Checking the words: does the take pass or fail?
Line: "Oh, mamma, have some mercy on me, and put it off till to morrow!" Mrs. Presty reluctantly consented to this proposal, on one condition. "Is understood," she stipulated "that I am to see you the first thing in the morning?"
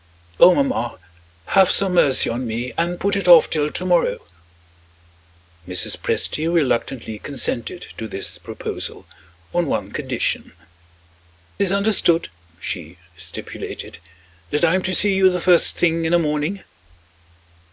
pass